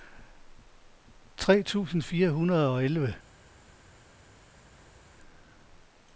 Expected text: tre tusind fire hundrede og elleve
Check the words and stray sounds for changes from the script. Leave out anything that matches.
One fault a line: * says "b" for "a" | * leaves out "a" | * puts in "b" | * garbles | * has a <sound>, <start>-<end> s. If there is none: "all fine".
all fine